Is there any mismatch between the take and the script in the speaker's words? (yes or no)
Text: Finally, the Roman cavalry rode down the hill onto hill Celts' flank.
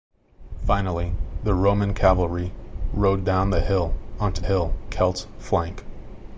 no